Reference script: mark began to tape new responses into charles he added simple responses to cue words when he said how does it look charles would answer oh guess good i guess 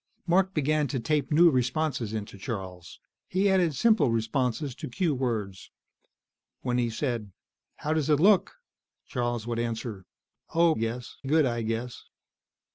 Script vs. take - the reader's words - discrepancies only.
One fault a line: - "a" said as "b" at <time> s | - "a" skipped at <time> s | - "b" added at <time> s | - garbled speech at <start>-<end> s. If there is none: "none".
none